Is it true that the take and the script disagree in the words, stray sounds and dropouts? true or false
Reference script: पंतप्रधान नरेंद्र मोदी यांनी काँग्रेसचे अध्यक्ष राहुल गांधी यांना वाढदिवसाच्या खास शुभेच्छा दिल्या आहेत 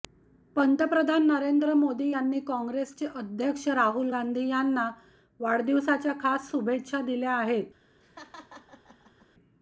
true